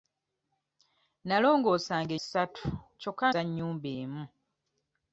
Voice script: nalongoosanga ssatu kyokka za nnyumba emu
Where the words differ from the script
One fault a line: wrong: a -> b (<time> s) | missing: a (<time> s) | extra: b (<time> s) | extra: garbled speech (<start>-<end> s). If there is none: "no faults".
no faults